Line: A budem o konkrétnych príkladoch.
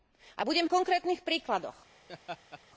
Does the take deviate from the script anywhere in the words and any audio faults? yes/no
yes